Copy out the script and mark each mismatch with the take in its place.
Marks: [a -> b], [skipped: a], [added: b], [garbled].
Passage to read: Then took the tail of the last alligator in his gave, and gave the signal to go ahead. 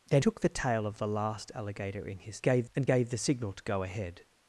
Then took the tail of the last alligator in his gave, and gave the signal to go ahead.